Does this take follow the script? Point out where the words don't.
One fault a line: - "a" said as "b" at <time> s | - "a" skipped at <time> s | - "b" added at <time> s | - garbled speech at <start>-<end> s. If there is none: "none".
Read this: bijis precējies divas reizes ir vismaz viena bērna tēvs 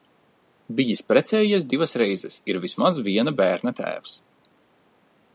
none